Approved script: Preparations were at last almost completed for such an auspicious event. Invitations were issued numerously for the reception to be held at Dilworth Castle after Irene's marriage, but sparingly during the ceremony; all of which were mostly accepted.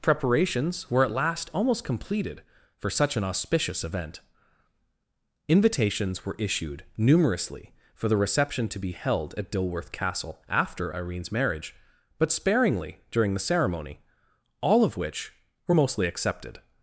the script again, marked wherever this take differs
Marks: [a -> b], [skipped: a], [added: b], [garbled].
Preparations were at last almost completed for such an auspicious event. Invitations were issued numerously for the reception to be held at Dilworth Castle after Irene's marriage, but sparingly during the ceremony; all of which were mostly accepted.